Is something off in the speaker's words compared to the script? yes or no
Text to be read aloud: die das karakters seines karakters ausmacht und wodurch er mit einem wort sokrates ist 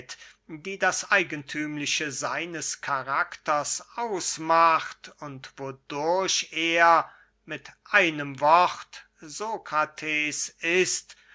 yes